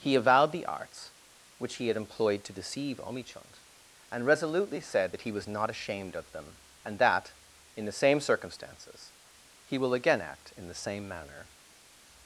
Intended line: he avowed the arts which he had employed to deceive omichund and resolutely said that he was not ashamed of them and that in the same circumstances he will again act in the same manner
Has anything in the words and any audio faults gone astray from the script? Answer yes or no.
no